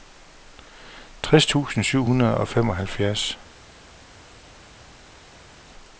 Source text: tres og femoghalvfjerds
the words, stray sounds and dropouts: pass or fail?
fail